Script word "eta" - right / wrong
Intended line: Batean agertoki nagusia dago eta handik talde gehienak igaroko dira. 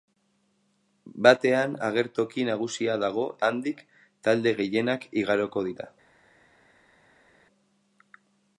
wrong